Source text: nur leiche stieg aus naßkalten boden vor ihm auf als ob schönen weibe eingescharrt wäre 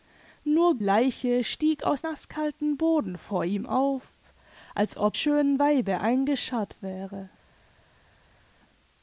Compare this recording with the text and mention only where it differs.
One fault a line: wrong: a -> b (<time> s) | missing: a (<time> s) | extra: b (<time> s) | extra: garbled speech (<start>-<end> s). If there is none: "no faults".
no faults